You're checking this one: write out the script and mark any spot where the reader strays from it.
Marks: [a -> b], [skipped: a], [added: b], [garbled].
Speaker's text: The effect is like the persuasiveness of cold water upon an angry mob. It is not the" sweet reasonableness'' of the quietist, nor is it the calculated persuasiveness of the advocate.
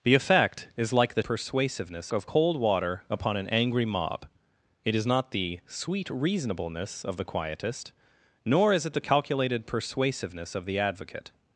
The effect is like the persuasiveness of cold water upon an angry mob. It is not the" sweet reasonableness'' of the quietist, nor is it the calculated persuasiveness of the advocate.